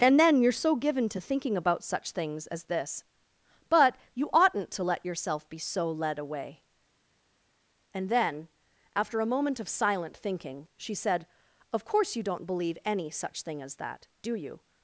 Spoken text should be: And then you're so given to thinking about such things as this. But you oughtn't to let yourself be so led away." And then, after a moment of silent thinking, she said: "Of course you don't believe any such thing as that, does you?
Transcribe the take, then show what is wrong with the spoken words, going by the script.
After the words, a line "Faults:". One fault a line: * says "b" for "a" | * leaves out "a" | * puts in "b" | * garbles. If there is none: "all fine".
And then you're so given to thinking about such things as this. But you oughtn't to let yourself be so led away." And then, after a moment of silent thinking, she said: "Of course you don't believe any such thing as that, do you?
Faults:
* says "do" for "does"